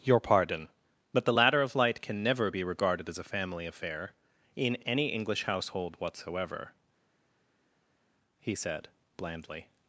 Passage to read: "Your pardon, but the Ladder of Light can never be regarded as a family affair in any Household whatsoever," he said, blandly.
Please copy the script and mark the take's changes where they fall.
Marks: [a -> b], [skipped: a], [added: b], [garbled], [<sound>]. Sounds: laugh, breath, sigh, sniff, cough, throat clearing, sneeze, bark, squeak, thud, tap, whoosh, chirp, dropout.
"Your pardon, but the Ladder of Light can never be regarded as a family affair in any [added: English] Household whatsoever," he said, blandly.